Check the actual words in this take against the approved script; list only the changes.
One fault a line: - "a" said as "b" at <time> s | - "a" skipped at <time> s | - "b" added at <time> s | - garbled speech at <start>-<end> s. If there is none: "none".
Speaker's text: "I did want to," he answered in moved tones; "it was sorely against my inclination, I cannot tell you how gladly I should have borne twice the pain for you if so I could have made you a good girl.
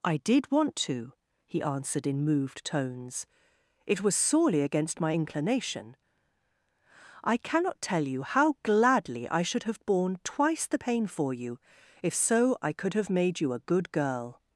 none